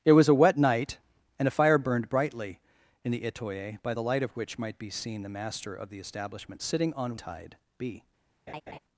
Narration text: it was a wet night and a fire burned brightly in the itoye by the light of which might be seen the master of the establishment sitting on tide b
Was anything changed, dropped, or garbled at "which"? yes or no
no